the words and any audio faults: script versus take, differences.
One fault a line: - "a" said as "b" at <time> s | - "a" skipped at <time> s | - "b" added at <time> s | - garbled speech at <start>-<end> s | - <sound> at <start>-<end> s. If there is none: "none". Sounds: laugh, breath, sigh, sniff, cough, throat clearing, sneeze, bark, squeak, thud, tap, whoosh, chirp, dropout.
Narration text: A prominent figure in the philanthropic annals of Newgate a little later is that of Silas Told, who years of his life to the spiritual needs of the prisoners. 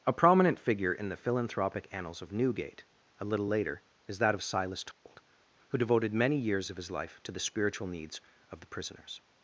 - dropout at 4.9-5.1 s
- "devoted many" added at 5.8 s